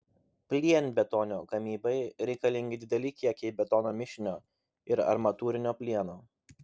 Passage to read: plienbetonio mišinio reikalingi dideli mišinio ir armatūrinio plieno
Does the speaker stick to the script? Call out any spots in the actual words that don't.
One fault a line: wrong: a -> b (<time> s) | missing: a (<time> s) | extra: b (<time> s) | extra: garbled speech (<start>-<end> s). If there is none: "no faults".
wrong: mišinio -> gamybai (1.5 s)
extra: kiekiai betono (3.2 s)